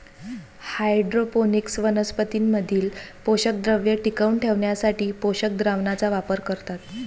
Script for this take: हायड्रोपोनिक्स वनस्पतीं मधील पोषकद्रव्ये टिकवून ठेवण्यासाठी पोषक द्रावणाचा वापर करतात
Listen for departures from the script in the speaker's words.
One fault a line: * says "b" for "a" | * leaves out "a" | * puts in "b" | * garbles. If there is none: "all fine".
all fine